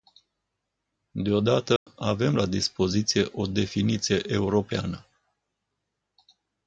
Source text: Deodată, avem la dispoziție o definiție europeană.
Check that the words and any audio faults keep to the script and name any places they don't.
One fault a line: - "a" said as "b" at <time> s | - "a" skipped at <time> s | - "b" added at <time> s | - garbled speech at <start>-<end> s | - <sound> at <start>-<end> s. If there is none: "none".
- dropout at 1.8-1.9 s